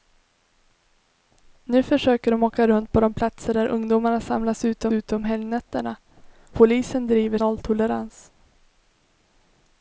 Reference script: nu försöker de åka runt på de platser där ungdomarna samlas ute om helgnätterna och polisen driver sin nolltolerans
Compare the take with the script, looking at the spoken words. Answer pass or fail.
fail